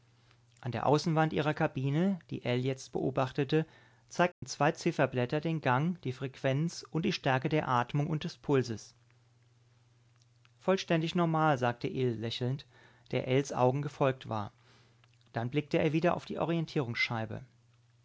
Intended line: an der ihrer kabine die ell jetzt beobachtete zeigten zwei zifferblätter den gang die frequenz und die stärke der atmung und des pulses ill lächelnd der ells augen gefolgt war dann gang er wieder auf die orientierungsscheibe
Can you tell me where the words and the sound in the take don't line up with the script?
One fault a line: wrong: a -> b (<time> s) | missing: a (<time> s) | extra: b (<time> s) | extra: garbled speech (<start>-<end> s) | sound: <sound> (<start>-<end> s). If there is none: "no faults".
extra: außenwand (0.9 s)
sound: dropout (4.3-4.4 s)
extra: vollständig normal sagte (10.6 s)
wrong: gang -> blickte (15.5 s)